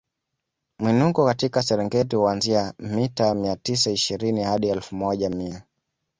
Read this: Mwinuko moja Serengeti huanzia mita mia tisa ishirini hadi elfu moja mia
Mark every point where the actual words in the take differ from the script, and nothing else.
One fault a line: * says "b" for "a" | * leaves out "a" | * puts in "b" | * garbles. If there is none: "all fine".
* says "katika" for "moja"